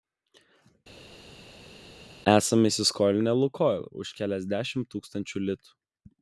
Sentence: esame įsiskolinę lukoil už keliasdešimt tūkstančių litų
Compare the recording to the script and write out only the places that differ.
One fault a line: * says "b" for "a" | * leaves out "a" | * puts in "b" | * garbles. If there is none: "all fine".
all fine